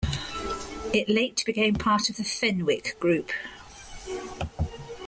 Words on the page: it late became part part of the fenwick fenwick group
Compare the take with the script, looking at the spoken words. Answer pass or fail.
fail